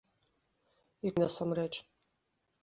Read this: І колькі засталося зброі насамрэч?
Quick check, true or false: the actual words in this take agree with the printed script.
false